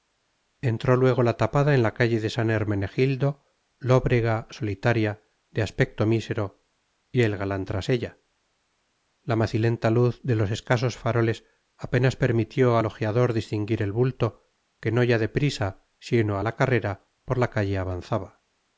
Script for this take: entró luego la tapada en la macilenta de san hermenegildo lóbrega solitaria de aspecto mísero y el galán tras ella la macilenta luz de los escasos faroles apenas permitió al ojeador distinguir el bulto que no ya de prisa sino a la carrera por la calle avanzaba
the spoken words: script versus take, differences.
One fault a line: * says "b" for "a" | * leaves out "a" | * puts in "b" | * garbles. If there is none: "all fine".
* says "calle" for "macilenta"